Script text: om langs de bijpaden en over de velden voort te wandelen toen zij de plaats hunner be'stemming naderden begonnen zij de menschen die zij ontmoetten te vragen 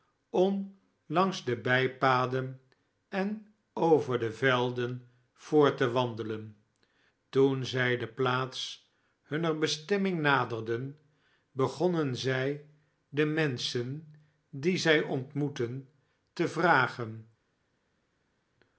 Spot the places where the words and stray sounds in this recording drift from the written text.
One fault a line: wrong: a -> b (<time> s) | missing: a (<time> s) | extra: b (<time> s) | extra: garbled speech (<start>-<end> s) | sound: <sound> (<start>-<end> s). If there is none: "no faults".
no faults